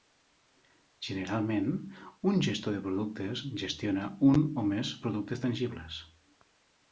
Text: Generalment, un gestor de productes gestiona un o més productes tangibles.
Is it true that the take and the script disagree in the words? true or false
false